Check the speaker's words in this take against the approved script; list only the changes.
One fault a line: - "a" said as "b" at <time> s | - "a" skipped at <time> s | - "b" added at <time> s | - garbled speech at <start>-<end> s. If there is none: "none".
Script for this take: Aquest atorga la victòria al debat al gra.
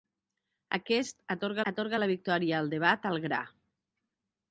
- "atorga" added at 1.7 s